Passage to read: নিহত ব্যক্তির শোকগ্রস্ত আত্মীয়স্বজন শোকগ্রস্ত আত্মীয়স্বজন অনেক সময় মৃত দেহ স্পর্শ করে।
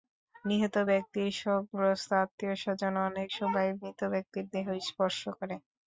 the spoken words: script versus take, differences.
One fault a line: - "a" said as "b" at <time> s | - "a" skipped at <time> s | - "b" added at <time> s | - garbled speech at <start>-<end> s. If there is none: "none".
- "শোকগ্রস্ত আত্মীয়স্বজন" skipped at 2.9 s
- "ব্যক্তির" added at 4.1 s